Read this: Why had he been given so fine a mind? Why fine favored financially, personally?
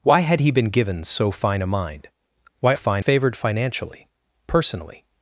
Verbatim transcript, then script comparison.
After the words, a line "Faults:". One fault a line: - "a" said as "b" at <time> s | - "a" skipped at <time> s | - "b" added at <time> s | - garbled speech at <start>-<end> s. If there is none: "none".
Why had he been given so fine a mind? Why fine favored financially, personally?
Faults:
none